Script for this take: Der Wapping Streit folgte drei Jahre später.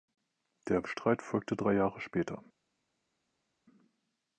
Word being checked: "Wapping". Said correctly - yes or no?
no